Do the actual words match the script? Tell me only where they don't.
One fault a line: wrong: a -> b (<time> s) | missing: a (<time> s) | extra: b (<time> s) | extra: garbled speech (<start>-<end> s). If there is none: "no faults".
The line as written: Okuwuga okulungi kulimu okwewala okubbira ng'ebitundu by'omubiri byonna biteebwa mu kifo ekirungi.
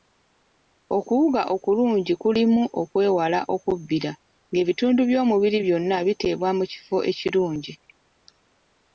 no faults